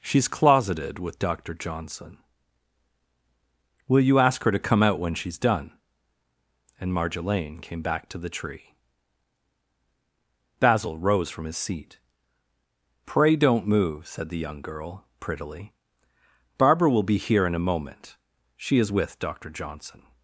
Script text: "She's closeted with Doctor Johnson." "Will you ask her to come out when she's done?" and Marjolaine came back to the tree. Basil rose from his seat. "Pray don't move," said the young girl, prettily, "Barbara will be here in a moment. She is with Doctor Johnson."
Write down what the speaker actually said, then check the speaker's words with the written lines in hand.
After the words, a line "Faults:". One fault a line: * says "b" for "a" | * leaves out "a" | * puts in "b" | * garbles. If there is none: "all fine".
"She's closeted with Doctor Johnson." "Will you ask her to come out when she's done?" and Marjolaine came back to the tree. Basil rose from his seat. "Pray don't move," said the young girl, prettily, "Barbara will be here in a moment. She is with Doctor Johnson."
Faults:
all fine